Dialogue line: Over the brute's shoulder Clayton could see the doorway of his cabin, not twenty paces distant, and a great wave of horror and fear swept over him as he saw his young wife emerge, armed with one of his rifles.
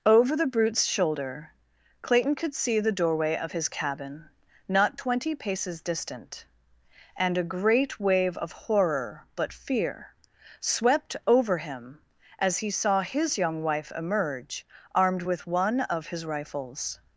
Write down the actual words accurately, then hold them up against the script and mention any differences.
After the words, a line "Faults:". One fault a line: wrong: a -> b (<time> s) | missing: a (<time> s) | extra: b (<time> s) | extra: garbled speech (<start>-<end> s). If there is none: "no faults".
Over the brute's shoulder Clayton could see the doorway of his cabin, not twenty paces distant, and a great wave of horror but fear swept over him as he saw his young wife emerge, armed with one of his rifles.
Faults:
wrong: and -> but (9.3 s)